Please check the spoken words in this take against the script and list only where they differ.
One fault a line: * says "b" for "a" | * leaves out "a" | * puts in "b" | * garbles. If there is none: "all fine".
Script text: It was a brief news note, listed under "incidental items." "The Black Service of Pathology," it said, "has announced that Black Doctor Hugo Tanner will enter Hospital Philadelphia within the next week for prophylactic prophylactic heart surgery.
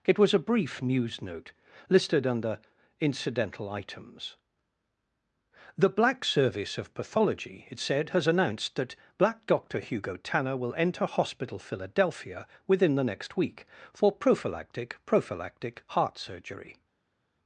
all fine